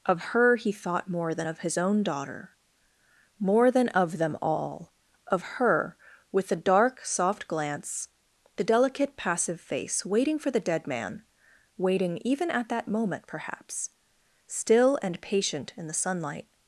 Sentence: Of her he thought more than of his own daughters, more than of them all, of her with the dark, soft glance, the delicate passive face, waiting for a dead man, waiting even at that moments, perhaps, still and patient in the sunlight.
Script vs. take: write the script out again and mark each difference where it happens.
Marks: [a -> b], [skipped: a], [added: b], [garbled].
Of her he thought more than of his own [daughters, -> daughter] more than of them all, of her with the dark, soft glance, the delicate passive face, waiting for [a -> the] dead man, waiting even at that [moments, -> moment] perhaps, still and patient in the sunlight.